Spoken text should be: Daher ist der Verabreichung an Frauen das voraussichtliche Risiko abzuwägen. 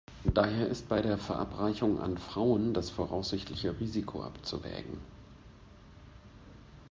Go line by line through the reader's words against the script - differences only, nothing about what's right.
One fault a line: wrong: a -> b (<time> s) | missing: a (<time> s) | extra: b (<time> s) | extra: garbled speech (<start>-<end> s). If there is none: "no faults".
extra: bei (0.9 s)